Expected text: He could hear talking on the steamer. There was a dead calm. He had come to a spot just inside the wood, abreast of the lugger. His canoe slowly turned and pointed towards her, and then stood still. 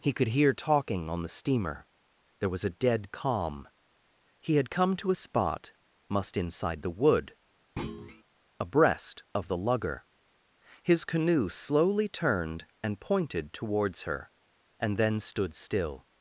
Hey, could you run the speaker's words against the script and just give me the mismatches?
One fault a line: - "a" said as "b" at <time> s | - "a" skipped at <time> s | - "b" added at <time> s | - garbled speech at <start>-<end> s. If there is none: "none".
- "just" said as "must" at 6.1 s